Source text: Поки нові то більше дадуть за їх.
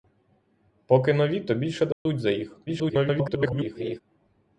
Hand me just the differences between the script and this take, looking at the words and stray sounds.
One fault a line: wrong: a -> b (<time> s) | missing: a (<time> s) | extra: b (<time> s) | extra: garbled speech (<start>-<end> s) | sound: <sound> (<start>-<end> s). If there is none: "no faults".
sound: dropout (1.9-2.1 s)
extra: garbled speech (2.7-4.0 s)